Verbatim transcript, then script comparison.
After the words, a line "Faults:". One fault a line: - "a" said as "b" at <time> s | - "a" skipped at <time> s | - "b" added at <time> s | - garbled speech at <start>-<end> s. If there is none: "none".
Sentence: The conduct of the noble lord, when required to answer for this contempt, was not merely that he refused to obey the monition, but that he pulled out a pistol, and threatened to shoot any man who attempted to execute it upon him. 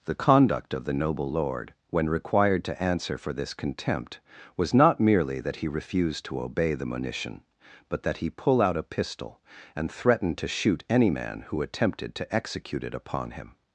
The conduct of the noble lord, when required to answer for this contempt, was not merely that he refused to obey the monition, but that he pull out a pistol, and threatened to shoot any man who attempted to execute it upon him.
Faults:
- "pulled" said as "pull" at 8.3 s